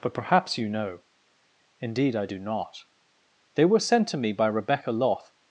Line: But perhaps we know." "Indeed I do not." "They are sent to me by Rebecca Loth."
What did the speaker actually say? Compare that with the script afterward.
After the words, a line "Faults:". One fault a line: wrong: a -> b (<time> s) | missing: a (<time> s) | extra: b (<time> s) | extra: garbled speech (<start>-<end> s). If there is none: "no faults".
But perhaps you know." "Indeed I do not." "They were sent to me by Rebecca Loth."
Faults:
wrong: we -> you (0.6 s)
wrong: are -> were (3.6 s)